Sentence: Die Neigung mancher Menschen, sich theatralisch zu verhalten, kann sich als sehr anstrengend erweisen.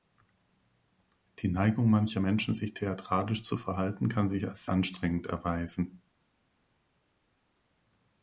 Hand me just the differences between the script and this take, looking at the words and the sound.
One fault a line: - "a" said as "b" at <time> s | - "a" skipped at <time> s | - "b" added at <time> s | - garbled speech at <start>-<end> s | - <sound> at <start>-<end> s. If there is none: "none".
- "sehr" skipped at 4.6 s